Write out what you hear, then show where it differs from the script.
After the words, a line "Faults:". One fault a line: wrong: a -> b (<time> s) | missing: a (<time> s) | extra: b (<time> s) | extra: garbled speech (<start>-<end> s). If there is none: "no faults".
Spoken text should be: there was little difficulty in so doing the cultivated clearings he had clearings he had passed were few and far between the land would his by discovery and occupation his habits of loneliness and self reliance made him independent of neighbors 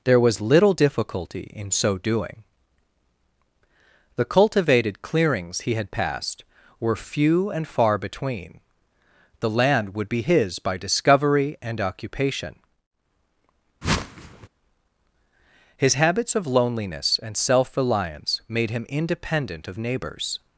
there was little difficulty in so doing the cultivated clearings he had passed were few and far between the land would be his by discovery and occupation his habits of loneliness and self reliance made him independent of neighbors
Faults:
missing: clearings he had (5.9 s)
extra: be (10.1 s)